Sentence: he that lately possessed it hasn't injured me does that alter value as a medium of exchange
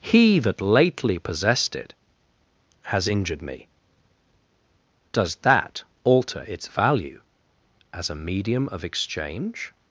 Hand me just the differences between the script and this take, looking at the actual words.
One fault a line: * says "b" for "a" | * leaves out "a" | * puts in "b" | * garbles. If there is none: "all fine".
* says "has" for "hasn't"
* puts in "its"